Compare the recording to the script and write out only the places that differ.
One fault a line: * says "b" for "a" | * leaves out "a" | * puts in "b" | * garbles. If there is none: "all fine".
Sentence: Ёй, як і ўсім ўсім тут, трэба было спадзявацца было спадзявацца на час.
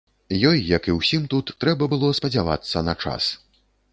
* leaves out "ўсім"
* leaves out "было спадзявацца"